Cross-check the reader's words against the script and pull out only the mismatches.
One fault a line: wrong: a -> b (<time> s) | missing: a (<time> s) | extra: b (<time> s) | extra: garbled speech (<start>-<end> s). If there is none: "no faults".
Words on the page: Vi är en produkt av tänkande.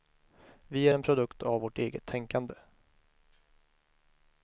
extra: vårt eget (1.6 s)